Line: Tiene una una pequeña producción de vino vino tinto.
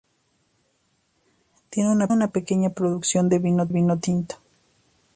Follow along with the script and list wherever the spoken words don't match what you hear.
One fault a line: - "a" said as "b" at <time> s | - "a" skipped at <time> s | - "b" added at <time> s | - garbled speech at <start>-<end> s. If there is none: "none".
none